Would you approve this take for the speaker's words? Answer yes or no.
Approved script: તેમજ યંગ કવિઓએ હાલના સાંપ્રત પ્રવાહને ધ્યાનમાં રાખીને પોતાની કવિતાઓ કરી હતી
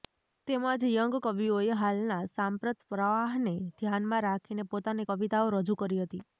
no